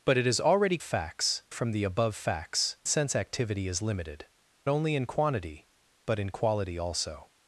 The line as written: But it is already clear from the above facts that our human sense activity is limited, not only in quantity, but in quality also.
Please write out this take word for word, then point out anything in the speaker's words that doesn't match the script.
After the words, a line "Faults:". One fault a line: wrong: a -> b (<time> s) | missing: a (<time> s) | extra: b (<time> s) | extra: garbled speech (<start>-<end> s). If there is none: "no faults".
But it is already facts from the above facts sense activity is limited, only in quantity, but in quality also.
Faults:
wrong: clear -> facts (0.8 s)
missing: that our human (2.8 s)
missing: not (4.3 s)